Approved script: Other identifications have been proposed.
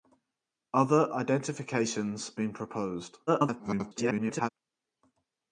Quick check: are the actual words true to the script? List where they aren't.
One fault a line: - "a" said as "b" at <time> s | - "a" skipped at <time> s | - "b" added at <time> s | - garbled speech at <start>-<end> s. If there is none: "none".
- "have" skipped at 2.3 s
- garbled speech at 3.3-4.5 s